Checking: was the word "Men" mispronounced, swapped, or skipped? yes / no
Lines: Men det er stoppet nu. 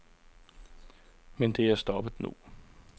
no